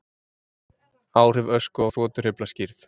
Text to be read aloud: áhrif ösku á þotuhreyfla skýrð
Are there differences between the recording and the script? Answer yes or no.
no